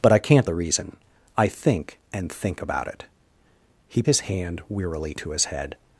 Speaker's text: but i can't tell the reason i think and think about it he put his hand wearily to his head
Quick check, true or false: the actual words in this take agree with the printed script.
false